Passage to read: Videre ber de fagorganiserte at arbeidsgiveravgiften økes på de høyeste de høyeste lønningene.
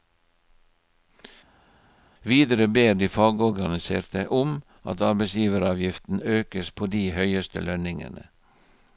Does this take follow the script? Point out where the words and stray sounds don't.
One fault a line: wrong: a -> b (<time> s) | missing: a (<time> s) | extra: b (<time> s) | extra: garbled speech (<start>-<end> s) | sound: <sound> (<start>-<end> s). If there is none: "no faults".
extra: om (4.3 s)
missing: de høyeste (7.6 s)